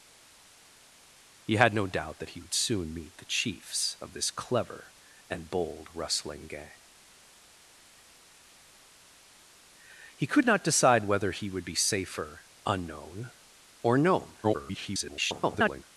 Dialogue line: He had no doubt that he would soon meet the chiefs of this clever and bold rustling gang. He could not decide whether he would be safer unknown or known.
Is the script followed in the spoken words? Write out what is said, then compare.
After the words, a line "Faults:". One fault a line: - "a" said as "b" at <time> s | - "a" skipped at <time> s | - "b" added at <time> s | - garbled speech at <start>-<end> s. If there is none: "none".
He had no doubt that he would soon meet the chiefs of this clever and bold rustling gang. He could not decide whether he would be safer unknown or known. [garbled]
Faults:
- garbled speech at 14.4-15.8 s